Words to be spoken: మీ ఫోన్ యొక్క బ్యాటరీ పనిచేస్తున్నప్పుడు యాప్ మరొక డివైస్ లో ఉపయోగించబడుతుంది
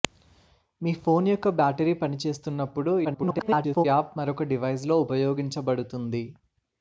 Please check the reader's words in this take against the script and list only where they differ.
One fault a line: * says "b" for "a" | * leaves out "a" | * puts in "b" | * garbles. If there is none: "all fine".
* garbles